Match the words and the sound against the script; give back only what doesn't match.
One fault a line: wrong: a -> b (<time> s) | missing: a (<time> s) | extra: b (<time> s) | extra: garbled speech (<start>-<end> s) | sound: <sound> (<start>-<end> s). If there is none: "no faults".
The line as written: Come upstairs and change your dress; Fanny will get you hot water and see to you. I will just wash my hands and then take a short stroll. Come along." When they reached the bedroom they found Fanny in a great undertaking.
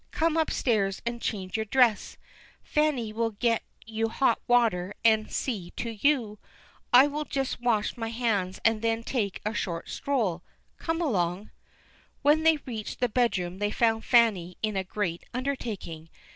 no faults